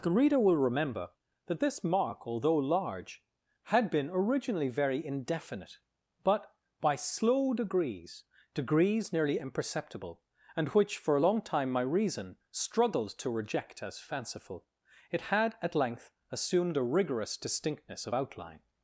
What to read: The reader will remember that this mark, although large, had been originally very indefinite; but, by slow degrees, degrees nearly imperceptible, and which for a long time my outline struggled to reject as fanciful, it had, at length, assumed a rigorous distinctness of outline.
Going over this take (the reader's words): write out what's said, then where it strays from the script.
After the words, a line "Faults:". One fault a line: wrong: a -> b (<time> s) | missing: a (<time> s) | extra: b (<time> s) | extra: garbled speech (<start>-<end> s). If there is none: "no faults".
The reader will remember that this mark, although large, had been originally very indefinite; but, by slow degrees, degrees nearly imperceptible, and which for a long time my reason struggled to reject as fanciful, it had, at length, assumed a rigorous distinctness of outline.
Faults:
wrong: outline -> reason (11.8 s)